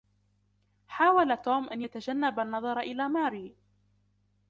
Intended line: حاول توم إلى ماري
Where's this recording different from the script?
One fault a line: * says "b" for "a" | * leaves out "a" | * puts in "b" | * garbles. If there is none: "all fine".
* puts in "أن يتجنب النظر"